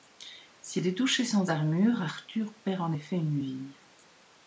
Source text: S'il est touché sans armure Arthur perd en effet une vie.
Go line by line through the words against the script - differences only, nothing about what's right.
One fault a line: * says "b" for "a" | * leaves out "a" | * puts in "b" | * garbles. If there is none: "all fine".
all fine